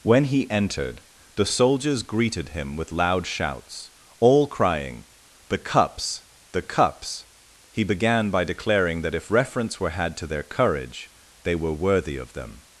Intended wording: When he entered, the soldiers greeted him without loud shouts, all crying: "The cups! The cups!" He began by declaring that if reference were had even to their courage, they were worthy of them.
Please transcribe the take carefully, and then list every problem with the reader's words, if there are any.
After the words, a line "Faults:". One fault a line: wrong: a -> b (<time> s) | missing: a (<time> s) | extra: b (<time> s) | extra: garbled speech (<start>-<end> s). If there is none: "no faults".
When he entered, the soldiers greeted him with loud shouts, all crying: "The cups! The cups!" He began by declaring that if reference were had to their courage, they were worthy of them.
Faults:
wrong: without -> with (2.8 s)
missing: even (10.2 s)